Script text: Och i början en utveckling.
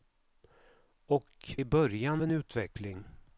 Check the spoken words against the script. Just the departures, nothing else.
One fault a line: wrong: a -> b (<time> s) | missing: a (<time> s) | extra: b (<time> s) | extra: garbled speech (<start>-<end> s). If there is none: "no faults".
no faults